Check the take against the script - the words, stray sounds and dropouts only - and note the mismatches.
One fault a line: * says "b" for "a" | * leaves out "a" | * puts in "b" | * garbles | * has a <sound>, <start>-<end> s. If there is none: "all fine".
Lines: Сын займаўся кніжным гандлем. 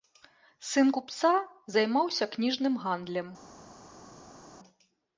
* puts in "купца"